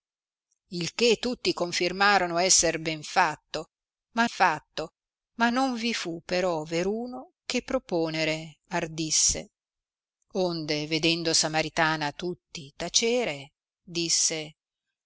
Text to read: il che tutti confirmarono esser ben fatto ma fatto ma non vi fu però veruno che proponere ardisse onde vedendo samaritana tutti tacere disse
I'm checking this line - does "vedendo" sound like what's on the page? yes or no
yes